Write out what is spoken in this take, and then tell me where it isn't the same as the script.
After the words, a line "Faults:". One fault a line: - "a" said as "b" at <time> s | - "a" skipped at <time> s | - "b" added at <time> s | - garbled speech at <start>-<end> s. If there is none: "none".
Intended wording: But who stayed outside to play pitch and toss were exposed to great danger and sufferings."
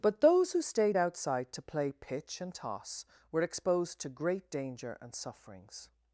But those who stayed outside to play pitch and toss were exposed to great danger and sufferings."
Faults:
- "those" added at 0.2 s